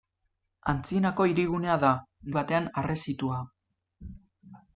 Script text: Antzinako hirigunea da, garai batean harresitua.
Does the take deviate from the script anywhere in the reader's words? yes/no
yes